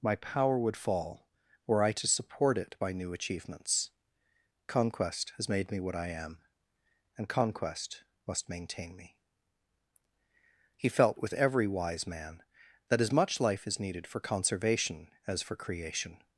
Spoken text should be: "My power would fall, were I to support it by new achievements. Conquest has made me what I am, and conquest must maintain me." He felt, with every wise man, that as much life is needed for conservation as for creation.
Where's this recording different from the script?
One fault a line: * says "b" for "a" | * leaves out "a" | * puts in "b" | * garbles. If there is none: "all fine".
all fine